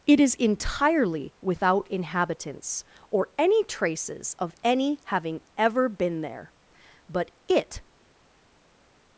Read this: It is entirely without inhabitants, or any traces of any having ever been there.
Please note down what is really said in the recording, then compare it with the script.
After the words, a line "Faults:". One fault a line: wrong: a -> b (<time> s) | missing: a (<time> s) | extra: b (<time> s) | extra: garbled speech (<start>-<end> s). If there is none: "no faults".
It is entirely without inhabitants, or any traces of any having ever been there. But it
Faults:
extra: But it (7.1 s)